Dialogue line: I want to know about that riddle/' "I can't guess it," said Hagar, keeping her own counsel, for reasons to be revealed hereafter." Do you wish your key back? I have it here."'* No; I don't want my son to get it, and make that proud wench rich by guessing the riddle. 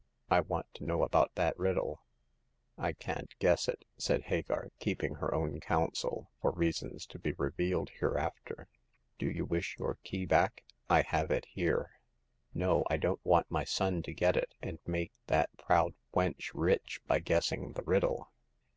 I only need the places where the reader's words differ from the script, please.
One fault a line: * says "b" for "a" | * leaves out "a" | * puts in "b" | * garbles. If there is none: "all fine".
all fine